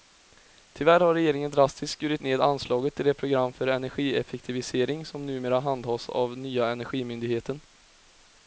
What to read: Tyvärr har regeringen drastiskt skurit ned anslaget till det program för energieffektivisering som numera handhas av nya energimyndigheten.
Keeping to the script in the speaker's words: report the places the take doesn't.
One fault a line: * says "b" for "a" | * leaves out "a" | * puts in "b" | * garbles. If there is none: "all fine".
all fine